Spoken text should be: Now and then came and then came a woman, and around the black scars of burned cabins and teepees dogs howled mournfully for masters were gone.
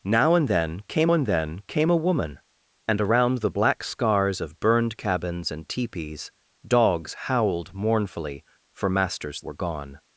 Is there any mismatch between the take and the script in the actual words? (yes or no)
no